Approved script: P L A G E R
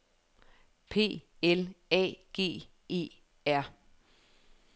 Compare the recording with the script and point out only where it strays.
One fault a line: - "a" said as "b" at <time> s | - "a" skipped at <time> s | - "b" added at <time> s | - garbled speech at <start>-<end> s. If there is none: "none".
none